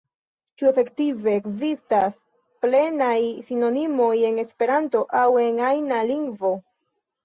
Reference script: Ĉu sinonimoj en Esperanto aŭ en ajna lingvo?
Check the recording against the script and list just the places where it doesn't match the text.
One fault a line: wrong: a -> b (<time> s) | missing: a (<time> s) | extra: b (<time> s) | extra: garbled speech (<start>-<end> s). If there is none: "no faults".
extra: efektive ekzistas plenaj (0.7 s)